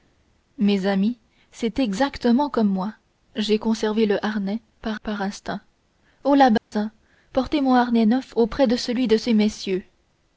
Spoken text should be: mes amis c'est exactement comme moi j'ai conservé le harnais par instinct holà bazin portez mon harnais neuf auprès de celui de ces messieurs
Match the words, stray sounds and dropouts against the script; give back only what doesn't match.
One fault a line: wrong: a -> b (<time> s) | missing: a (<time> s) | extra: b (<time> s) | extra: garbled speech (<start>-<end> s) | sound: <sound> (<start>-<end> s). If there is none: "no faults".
extra: par (5.0 s)
sound: dropout (6.6-6.7 s)